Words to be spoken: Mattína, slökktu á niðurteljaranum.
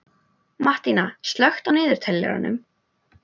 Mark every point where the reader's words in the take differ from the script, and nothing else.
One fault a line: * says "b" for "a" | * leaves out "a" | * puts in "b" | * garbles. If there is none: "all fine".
all fine